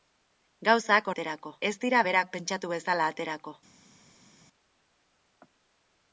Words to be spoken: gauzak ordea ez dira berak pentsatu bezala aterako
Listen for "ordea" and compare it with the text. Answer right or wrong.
wrong